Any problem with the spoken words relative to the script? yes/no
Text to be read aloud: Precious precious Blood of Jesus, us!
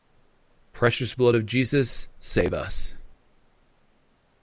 yes